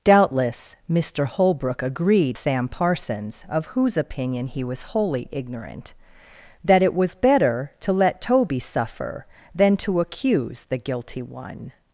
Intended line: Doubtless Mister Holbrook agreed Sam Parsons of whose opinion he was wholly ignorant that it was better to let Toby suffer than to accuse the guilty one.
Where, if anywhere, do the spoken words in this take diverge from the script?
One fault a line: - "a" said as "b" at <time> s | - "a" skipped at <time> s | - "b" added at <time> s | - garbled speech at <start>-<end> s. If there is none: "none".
none